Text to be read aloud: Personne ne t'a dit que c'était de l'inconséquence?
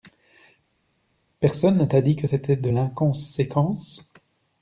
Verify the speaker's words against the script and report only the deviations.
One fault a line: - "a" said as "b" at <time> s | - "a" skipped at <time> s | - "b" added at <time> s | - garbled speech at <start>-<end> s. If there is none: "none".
none